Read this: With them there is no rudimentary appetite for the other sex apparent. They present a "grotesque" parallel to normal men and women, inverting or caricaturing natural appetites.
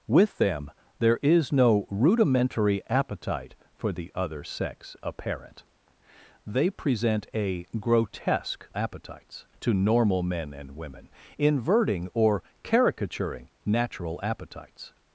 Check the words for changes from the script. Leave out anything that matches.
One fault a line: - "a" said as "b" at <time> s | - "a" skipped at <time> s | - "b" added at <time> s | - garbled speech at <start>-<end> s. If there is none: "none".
- "parallel" said as "appetites" at 8.8 s